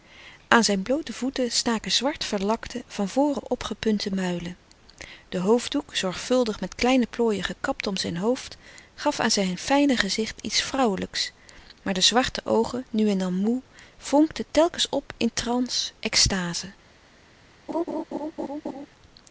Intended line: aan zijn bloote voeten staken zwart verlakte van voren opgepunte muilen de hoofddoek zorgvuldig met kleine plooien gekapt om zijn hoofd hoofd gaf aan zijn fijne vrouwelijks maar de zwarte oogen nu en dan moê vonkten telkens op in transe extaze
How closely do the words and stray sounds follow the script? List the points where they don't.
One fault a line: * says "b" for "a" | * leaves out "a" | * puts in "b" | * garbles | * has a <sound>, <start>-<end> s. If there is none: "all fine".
* leaves out "hoofd"
* puts in "gezicht iets"
* has a laugh, 17.7-18.9 s